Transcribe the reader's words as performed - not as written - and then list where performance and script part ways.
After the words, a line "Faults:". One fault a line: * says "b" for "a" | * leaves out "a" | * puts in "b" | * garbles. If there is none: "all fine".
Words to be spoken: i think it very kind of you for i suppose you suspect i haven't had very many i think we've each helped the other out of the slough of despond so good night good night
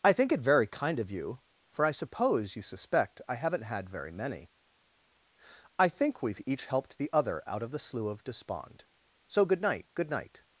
i think it very kind of you for i suppose you suspect i haven't had very many i think we've each helped the other out of the slough of despond so good night good night
Faults:
all fine